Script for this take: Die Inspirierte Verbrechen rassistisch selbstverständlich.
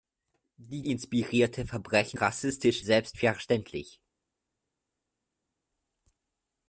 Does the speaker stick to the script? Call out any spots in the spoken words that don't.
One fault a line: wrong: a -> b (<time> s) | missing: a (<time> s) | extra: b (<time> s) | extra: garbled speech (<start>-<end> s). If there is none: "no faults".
no faults